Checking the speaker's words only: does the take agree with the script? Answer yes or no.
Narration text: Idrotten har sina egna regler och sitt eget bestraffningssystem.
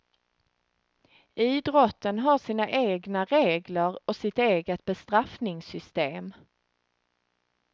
yes